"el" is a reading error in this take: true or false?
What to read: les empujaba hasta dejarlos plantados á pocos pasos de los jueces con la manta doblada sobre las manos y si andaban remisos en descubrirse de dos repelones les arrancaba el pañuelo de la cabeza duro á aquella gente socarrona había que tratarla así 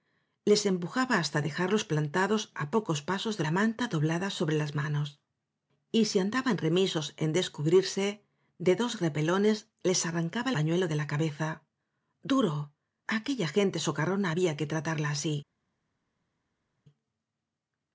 true